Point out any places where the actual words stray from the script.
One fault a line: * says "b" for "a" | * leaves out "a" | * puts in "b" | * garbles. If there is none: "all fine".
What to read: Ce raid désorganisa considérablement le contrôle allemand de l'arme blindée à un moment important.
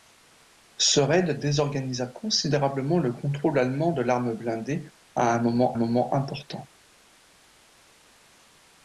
* puts in "moment"